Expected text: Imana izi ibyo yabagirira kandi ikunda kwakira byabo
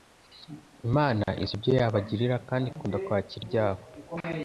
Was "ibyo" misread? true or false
false